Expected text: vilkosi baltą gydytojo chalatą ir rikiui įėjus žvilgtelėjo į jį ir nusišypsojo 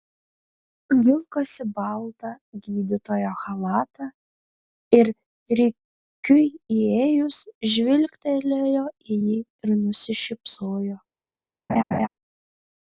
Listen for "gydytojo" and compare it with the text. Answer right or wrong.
right